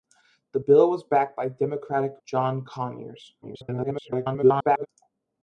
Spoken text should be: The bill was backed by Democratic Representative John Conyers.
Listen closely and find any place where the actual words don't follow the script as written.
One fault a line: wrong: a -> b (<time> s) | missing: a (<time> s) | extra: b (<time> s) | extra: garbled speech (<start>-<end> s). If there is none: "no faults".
missing: Representative (2.1 s)
extra: garbled speech (3.4-4.9 s)